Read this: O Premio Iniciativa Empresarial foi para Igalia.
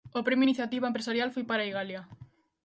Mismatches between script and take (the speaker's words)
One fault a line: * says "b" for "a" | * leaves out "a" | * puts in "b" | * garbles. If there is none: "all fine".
all fine